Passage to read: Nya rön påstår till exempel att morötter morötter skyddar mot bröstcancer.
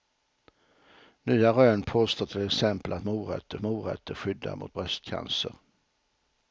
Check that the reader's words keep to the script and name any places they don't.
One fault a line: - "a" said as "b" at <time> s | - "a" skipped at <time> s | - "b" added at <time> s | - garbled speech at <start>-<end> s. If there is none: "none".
none